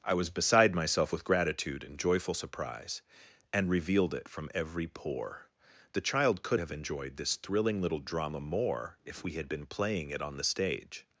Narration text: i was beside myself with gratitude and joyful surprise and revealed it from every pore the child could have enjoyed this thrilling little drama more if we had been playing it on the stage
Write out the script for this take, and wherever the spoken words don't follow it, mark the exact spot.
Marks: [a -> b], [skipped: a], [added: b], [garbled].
i was beside myself with gratitude and joyful surprise and revealed it from every pore the child could have enjoyed this thrilling little drama more if we had been playing it on the stage